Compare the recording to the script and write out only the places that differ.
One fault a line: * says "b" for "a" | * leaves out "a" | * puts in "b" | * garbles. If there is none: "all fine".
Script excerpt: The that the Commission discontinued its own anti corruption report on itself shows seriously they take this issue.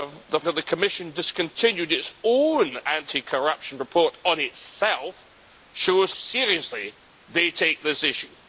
all fine